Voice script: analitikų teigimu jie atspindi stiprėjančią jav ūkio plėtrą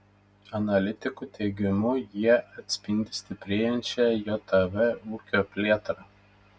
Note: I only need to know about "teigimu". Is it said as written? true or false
true